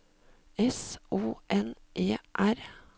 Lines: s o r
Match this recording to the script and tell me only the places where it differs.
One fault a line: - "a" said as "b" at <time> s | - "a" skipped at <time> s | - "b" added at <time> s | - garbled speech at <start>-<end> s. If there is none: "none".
- "n e" added at 1.5 s